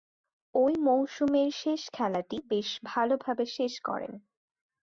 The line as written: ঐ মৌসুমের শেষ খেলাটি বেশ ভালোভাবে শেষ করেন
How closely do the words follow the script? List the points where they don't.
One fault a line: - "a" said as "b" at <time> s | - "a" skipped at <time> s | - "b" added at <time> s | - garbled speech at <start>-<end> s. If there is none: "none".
none